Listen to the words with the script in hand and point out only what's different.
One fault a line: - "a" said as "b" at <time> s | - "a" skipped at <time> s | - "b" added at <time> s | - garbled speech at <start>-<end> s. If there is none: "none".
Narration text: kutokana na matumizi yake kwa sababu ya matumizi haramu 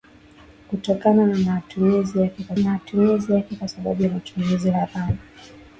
- "matumizi yake kwa" added at 2.6 s